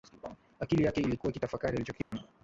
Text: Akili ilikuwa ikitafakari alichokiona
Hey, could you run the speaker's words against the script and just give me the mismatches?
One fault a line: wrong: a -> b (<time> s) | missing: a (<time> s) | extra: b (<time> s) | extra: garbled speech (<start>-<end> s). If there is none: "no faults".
extra: yake (0.8 s)